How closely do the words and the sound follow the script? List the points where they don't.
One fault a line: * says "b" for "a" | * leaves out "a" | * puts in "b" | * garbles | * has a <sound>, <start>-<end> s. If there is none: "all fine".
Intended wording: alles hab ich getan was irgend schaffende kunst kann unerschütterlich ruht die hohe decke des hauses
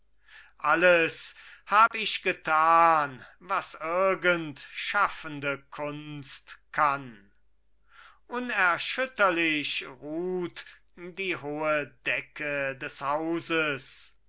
* has a dropout, 1.9-1.9 s